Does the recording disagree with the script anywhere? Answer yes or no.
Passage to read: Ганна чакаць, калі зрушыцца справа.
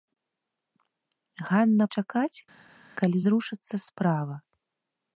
no